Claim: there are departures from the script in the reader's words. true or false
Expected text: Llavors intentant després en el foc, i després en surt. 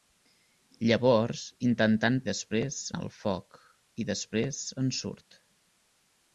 false